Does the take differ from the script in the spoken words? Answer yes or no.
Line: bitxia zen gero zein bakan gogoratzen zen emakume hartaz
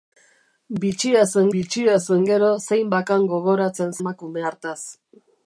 yes